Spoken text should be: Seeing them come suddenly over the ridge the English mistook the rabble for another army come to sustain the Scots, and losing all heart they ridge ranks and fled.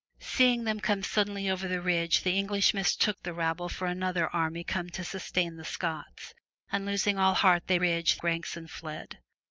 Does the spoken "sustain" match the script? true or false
true